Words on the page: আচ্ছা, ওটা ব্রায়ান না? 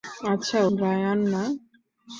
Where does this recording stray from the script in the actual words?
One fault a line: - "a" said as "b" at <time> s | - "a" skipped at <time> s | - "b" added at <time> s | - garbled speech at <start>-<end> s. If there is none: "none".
- "ওটা" skipped at 0.6 s